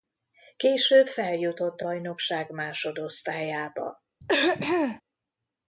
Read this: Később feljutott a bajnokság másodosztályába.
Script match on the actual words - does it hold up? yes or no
yes